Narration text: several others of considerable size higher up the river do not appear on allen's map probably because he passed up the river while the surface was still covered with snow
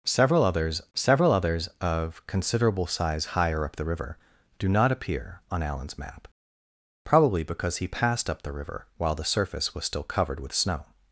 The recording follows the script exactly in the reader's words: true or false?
false